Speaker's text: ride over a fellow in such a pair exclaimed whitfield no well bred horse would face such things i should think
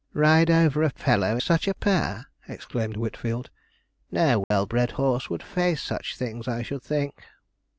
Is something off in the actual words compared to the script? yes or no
yes